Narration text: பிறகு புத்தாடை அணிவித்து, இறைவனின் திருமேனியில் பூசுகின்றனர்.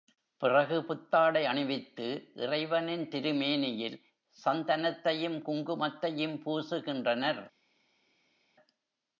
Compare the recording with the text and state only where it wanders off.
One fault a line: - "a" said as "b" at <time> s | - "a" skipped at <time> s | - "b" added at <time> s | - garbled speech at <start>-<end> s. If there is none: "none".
- "சந்தனத்தையும் குங்குமத்தையும்" added at 4.4 s